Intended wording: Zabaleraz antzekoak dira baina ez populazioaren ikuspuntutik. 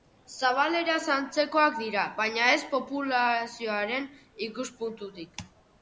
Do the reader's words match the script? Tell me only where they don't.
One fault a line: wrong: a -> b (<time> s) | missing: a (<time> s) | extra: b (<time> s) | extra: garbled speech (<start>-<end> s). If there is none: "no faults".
no faults